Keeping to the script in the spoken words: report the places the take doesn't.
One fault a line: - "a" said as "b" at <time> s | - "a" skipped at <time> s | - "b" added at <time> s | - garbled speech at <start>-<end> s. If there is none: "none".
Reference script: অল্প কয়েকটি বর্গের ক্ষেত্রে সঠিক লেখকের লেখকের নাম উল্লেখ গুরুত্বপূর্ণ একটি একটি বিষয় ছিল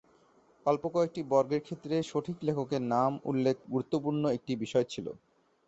- "লেখকের" skipped at 2.8 s
- "একটি" skipped at 4.5 s